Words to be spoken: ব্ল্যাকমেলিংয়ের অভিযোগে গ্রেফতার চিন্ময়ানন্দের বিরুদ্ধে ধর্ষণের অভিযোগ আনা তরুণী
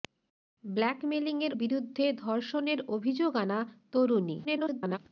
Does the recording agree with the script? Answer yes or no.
no